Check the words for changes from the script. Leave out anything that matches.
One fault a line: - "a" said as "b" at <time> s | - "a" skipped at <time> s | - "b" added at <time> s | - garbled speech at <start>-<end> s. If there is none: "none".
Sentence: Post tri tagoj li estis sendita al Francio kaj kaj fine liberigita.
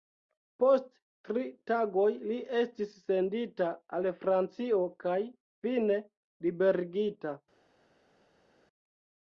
- "kaj" skipped at 5.2 s